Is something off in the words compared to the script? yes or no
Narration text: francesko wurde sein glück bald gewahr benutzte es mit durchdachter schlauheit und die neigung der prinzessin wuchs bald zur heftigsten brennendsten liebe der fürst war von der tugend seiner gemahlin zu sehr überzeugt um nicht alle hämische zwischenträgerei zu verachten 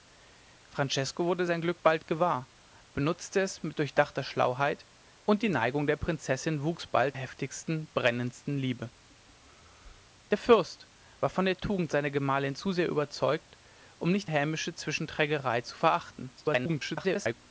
yes